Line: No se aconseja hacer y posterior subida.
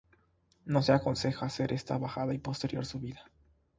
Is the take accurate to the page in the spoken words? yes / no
no